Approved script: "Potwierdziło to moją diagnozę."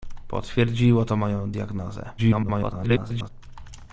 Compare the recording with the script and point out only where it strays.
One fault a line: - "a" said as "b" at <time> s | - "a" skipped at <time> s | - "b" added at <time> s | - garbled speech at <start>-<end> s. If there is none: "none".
- garbled speech at 2.2-3.3 s